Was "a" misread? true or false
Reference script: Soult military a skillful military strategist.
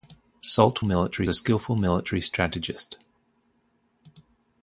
false